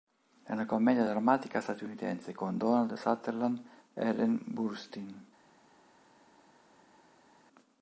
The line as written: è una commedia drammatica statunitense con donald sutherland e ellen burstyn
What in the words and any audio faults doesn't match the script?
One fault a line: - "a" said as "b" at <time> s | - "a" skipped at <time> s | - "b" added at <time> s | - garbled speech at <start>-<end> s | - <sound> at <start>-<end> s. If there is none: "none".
none